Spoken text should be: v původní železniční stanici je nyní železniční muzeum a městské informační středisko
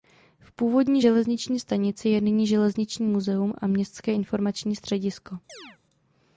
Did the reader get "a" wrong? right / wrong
right